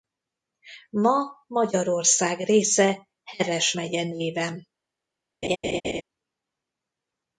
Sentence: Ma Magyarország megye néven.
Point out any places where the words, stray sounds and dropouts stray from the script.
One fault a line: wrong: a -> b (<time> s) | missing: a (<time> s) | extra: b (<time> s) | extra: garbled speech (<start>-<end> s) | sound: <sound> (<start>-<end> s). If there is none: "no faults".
extra: része Heves (2.4 s)
sound: laugh (5.4-6.0 s)